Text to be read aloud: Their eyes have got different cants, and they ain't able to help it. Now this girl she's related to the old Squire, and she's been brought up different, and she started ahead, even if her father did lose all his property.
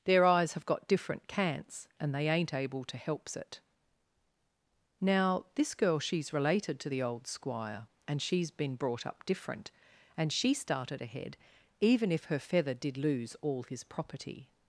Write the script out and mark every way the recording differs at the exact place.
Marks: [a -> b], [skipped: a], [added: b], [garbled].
Their eyes have got different cants, and they ain't able to [help -> helps] it. Now this girl she's related to the old Squire, and she's been brought up different, and she started ahead, even if her [father -> feather] did lose all his property.